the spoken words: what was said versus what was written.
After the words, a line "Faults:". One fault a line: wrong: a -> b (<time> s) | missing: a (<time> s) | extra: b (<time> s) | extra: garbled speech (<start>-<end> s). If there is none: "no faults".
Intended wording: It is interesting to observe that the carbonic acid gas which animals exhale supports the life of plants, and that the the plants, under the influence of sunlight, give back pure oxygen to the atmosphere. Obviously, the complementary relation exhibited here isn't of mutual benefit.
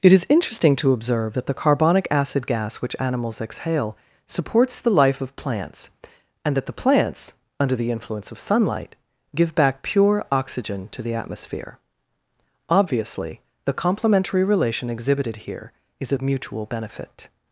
It is interesting to observe that the carbonic acid gas which animals exhale supports the life of plants, and that the plants, under the influence of sunlight, give back pure oxygen to the atmosphere. Obviously, the complementary relation exhibited here is of mutual benefit.
Faults:
missing: the (6.8 s)
wrong: isn't -> is (16.0 s)